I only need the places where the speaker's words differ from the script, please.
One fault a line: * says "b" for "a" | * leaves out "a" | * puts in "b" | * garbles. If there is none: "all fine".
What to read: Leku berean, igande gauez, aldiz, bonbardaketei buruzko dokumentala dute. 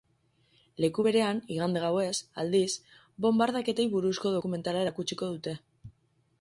* puts in "erakutsiko"